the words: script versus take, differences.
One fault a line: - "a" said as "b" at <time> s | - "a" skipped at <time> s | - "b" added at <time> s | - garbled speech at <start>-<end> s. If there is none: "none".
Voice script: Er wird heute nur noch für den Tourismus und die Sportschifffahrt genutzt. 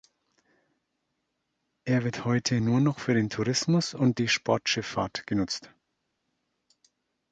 none